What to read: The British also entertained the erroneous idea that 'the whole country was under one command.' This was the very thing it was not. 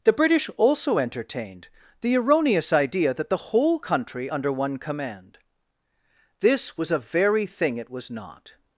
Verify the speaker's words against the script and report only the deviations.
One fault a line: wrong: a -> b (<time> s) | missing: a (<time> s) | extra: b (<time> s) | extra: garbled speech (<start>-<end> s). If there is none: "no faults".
missing: was (4.3 s)
wrong: the -> a (6.9 s)